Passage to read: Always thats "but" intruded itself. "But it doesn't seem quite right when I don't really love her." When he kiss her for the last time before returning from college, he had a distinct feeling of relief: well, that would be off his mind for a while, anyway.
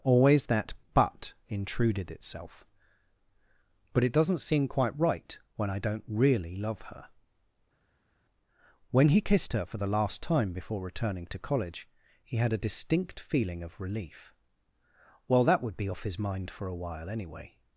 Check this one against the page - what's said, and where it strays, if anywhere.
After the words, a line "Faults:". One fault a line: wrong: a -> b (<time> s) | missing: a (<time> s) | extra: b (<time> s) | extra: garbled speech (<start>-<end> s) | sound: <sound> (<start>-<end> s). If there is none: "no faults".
Always that "but" intruded itself. "But it doesn't seem quite right when I don't really love her." When he kissed her for the last time before returning to college, he had a distinct feeling of relief: well, that would be off his mind for a while, anyway.
Faults:
wrong: thats -> that (0.5 s)
wrong: kiss -> kissed (9.2 s)
wrong: from -> to (11.3 s)